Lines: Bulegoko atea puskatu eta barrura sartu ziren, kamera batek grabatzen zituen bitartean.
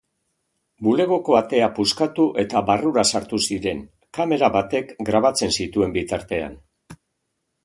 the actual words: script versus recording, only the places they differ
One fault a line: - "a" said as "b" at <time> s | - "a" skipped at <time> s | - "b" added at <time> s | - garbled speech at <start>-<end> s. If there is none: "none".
none